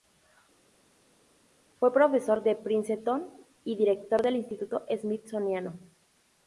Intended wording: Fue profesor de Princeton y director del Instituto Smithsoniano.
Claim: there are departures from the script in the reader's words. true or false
false